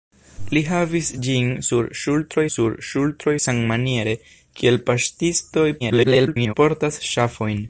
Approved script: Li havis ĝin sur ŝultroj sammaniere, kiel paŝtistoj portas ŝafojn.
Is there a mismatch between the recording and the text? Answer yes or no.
yes